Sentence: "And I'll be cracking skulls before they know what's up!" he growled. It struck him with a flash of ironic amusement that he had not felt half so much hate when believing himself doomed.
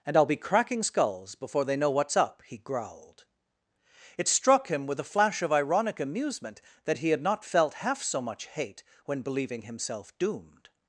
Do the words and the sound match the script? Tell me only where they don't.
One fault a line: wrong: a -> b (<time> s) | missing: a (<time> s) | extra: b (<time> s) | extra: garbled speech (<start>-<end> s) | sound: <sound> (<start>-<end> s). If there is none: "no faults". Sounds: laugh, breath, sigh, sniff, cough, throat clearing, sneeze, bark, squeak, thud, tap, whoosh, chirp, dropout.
no faults